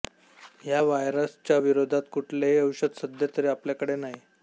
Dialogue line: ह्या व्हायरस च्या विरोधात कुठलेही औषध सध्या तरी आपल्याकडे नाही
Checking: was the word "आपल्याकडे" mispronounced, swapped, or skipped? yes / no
no